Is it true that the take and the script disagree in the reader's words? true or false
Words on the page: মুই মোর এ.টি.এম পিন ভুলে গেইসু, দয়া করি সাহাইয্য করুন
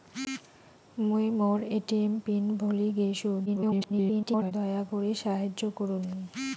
true